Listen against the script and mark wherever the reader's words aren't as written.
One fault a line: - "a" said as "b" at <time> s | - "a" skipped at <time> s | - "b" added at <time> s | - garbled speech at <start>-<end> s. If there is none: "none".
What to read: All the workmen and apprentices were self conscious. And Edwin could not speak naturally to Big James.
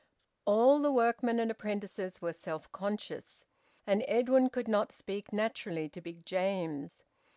none